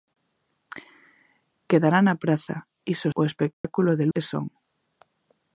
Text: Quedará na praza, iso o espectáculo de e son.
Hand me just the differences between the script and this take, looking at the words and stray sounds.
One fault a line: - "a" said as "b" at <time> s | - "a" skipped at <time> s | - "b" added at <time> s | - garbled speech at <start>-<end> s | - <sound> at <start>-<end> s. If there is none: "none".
- dropout at 3.5-3.6 s